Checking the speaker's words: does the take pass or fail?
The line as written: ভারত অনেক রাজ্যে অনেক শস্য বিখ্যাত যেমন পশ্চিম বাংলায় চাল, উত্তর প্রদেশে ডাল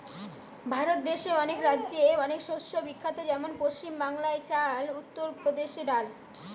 fail